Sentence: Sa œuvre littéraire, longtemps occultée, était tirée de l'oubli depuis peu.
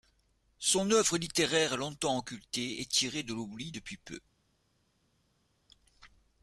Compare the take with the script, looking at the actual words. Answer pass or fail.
fail